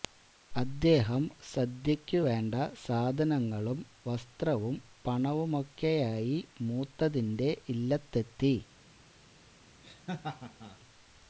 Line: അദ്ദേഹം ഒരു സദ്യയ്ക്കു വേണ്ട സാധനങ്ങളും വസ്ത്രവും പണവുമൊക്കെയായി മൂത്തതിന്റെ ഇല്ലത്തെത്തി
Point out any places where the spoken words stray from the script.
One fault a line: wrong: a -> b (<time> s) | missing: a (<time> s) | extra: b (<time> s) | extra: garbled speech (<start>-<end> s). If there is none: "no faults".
missing: ഒരു (1.2 s)